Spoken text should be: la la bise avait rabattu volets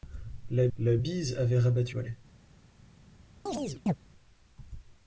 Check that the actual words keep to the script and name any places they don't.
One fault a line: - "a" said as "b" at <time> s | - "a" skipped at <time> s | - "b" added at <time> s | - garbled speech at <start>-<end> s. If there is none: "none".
none